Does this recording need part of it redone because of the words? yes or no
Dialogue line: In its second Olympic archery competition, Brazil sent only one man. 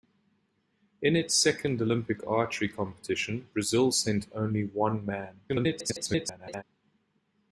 yes